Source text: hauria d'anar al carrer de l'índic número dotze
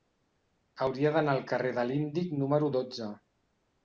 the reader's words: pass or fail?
pass